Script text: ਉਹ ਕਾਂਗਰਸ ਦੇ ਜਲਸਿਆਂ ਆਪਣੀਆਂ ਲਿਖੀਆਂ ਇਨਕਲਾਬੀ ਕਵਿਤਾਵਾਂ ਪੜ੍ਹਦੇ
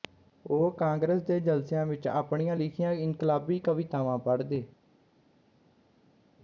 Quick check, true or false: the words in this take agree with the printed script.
false